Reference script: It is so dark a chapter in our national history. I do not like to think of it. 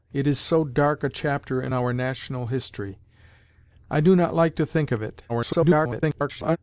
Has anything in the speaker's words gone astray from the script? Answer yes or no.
yes